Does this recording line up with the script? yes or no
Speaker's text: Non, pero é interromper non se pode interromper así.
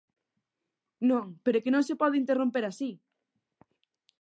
no